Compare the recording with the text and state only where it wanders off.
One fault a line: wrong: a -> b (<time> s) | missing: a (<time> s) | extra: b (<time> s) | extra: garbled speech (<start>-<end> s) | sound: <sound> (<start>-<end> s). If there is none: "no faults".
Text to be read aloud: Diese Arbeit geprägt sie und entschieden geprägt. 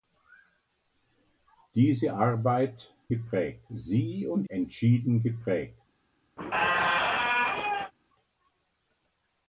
sound: squeak (6.4-7.9 s)